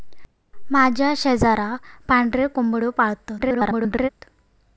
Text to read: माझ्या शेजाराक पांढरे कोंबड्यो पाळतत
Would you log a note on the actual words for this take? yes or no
yes